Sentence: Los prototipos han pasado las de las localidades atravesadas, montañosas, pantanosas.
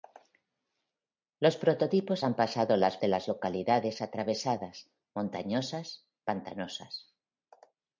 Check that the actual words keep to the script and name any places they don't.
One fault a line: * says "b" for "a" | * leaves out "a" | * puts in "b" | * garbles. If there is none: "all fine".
all fine